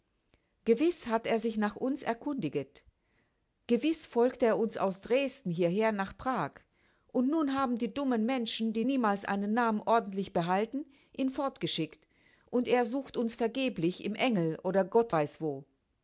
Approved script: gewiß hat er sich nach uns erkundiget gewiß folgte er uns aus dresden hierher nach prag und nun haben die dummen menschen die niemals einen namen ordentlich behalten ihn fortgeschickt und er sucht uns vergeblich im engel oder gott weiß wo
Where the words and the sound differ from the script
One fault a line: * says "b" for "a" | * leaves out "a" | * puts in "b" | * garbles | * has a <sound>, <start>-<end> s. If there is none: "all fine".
all fine